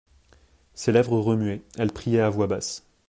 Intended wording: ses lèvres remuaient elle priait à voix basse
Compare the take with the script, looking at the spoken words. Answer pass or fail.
pass